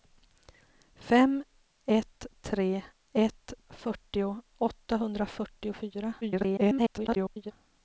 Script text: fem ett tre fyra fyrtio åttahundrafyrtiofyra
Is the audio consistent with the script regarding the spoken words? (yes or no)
no